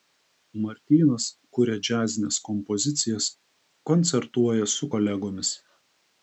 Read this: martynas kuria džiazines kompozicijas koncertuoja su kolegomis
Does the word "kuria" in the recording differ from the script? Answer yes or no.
no